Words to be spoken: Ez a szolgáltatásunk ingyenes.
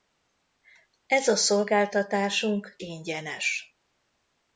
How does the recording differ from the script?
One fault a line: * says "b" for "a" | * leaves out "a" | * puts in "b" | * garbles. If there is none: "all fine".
all fine